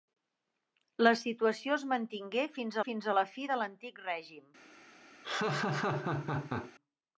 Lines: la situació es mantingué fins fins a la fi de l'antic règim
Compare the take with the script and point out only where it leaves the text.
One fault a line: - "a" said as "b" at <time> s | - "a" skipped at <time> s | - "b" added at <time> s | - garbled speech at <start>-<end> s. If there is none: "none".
none